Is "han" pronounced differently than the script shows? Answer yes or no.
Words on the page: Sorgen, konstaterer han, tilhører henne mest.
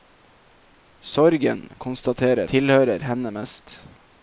yes